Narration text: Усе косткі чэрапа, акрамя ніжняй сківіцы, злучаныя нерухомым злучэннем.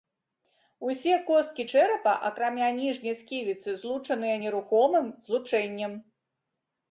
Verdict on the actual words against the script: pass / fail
pass